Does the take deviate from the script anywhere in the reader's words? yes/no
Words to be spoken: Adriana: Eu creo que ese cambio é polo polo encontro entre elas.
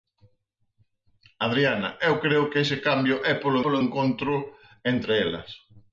no